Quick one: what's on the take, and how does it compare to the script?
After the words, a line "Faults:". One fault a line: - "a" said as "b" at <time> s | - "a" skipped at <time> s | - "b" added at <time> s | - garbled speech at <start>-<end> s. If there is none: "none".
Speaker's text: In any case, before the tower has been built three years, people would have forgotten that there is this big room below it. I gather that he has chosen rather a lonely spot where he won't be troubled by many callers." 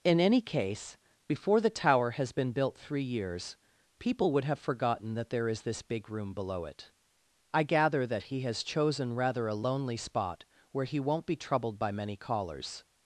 In any case, before the tower has been built three years, people would have forgotten that there is this big room below it. I gather that he has chosen rather a lonely spot where he won't be troubled by many callers."
Faults:
none